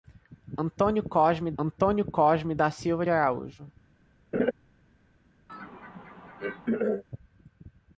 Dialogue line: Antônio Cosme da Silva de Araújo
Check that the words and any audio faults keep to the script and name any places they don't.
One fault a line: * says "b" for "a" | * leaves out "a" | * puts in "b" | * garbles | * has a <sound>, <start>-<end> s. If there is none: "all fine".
* puts in "antônio Cosme"
* leaves out "de"
* has a laugh, 4.3-4.5 s
* has a throat clearing, 5.5-7.0 s